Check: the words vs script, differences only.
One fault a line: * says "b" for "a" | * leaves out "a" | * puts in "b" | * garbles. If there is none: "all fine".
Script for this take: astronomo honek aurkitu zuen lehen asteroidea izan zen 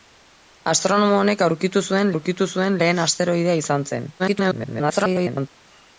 * puts in "aurkitu zuen"
* garbles